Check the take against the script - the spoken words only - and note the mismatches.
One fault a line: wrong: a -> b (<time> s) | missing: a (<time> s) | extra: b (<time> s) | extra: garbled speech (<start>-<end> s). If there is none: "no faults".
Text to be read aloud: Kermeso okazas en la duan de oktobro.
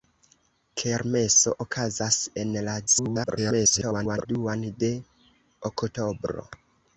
extra: garbled speech (2.9-4.3 s)